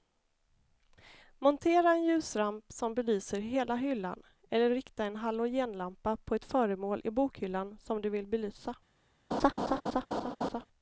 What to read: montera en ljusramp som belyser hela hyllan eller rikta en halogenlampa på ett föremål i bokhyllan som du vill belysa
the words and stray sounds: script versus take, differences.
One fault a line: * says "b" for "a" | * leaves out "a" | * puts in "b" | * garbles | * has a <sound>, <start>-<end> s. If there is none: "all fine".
* has a laugh, 9.3-10.7 s